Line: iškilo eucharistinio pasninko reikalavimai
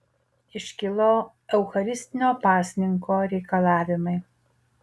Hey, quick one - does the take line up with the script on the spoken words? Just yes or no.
yes